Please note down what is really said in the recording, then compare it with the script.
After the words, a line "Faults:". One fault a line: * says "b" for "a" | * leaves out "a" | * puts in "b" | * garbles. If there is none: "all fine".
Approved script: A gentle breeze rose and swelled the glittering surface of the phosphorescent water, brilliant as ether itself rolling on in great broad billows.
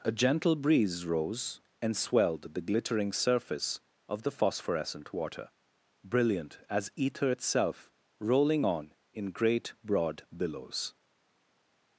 A gentle breeze rose and swelled the glittering surface of the phosphorescent water, brilliant as ether itself rolling on in great broad billows.
Faults:
all fine